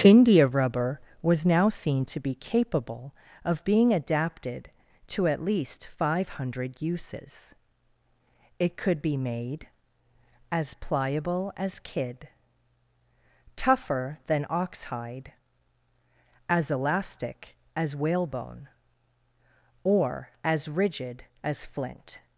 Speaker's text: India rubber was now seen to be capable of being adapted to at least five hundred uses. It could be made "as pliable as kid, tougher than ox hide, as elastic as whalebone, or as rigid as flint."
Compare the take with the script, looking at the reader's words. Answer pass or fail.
pass